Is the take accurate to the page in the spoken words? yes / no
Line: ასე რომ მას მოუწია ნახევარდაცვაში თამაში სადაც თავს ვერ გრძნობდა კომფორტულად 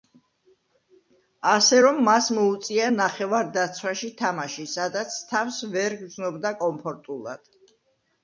yes